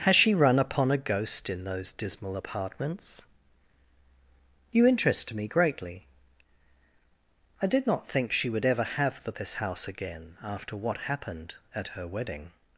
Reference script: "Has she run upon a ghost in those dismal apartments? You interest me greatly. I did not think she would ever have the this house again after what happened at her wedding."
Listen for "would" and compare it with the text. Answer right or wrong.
right